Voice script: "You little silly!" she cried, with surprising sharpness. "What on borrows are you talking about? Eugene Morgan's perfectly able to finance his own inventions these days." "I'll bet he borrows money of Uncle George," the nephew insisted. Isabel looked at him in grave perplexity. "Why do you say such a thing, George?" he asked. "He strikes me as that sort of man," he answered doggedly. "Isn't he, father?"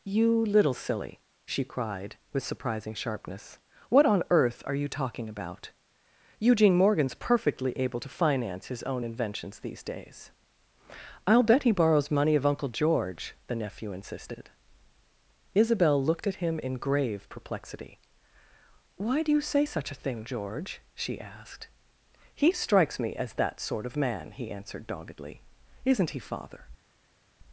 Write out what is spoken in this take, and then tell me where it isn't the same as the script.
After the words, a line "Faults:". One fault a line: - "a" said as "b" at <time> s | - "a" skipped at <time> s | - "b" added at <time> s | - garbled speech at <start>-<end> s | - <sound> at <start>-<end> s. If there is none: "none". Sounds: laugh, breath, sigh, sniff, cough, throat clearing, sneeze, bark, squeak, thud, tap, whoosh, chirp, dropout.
"You little silly!" she cried, with surprising sharpness. "What on earth are you talking about? Eugene Morgan's perfectly able to finance his own inventions these days." "I'll bet he borrows money of Uncle George," the nephew insisted. Isabel looked at him in grave perplexity. "Why do you say such a thing, George?" she asked. "He strikes me as that sort of man," he answered doggedly. "Isn't he, father?"
Faults:
- "borrows" said as "earth" at 4.3 s
- "he" said as "she" at 20.9 s